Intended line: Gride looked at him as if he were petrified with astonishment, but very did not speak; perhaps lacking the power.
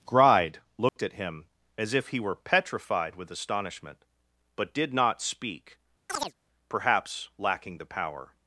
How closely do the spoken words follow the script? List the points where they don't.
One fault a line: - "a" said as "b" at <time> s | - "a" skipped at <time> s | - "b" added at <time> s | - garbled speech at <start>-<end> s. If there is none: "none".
- "very" skipped at 4.7 s